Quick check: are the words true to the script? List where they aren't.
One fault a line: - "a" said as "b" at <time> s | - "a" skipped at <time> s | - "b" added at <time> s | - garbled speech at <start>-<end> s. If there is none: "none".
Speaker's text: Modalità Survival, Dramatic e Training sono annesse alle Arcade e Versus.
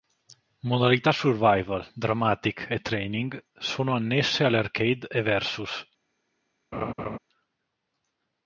none